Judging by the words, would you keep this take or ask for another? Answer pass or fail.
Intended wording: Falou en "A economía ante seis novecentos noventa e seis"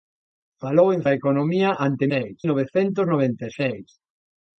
pass